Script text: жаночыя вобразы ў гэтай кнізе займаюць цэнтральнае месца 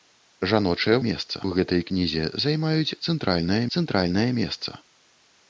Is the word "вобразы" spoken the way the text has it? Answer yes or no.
no